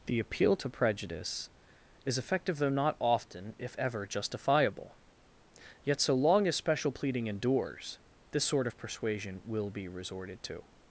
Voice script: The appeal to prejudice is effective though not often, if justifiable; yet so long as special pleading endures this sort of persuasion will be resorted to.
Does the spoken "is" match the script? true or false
true